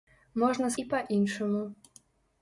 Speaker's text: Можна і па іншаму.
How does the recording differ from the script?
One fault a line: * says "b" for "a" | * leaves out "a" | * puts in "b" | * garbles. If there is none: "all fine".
all fine